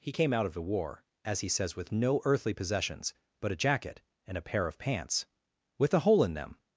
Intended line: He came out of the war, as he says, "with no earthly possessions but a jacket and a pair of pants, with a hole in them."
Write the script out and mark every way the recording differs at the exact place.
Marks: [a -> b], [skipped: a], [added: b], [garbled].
He came out of the war, as he says, "with no earthly possessions but a jacket and a pair of pants, with a hole in them."